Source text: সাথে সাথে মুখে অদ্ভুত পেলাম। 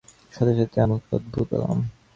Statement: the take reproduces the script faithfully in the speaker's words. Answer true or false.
true